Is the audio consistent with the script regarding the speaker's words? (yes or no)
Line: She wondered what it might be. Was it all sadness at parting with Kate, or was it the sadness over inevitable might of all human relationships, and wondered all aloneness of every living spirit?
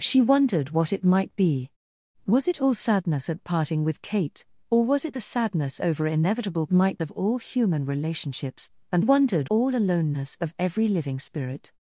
yes